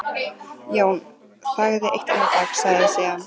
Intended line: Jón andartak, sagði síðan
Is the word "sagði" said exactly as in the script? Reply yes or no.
yes